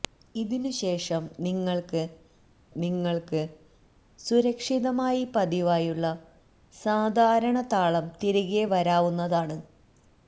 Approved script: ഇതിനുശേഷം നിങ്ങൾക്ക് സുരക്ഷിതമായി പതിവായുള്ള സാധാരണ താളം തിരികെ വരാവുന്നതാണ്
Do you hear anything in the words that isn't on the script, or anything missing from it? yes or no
yes